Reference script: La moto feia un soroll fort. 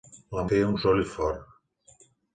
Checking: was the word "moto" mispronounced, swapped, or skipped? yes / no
yes